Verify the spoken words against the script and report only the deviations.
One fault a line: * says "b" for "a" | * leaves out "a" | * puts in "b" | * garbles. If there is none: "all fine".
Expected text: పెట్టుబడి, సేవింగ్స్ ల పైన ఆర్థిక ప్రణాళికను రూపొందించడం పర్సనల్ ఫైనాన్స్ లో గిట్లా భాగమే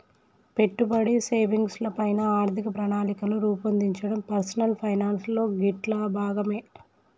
all fine